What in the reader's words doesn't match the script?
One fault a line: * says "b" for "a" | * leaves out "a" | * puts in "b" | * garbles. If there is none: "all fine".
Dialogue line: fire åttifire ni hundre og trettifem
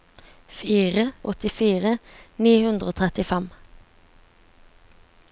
all fine